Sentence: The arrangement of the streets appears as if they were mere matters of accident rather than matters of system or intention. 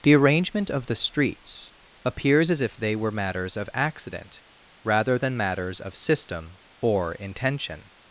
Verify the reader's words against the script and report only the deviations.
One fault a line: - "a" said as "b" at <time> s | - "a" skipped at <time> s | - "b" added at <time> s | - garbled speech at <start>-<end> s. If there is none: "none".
- "mere" skipped at 3.1 s